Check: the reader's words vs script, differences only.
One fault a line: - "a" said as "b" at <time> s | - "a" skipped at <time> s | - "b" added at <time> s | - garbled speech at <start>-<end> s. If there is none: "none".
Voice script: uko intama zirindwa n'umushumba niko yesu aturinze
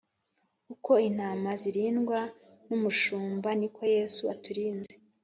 none